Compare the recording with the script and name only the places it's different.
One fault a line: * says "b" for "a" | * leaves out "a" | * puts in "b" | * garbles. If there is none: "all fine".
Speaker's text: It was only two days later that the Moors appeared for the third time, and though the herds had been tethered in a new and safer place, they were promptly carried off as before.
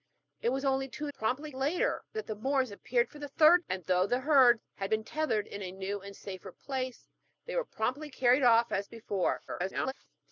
* says "promptly" for "days"
* leaves out "time"
* garbles